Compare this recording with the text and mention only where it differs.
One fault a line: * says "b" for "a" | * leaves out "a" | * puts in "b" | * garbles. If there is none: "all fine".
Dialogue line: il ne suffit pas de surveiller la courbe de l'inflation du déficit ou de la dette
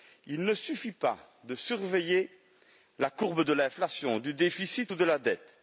all fine